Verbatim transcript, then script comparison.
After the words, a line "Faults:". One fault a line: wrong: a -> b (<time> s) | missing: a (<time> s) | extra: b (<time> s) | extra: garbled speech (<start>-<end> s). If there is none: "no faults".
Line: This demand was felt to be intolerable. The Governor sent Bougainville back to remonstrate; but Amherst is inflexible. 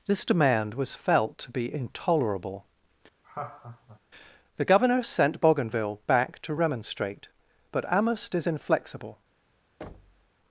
This demand was felt to be intolerable. The Governor sent Bougainville back to remonstrate; but Amherst is inflexible.
Faults:
no faults